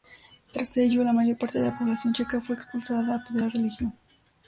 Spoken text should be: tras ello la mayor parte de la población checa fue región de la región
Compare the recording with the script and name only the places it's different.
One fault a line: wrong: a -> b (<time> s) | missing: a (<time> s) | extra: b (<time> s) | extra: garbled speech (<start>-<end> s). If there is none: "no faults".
wrong: región -> expulsada (2.5 s)